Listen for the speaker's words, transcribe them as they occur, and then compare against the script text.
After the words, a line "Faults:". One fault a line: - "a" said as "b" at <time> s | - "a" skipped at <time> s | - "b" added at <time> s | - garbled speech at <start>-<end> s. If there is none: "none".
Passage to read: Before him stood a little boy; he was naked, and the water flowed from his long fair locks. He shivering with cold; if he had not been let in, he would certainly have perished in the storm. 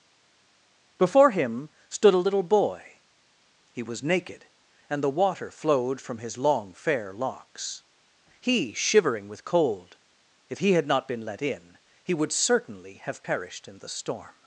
Before him stood a little boy; he was naked, and the water flowed from his long fair locks. He shivering with cold; if he had not been let in, he would certainly have perished in the storm.
Faults:
none